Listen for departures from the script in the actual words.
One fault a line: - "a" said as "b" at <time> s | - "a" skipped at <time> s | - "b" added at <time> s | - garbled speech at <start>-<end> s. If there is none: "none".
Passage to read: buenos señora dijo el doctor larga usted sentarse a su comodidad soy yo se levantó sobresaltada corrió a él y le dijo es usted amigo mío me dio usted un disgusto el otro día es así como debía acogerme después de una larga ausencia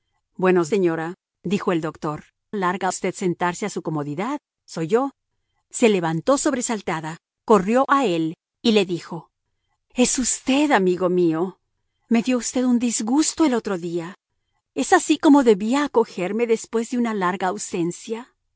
none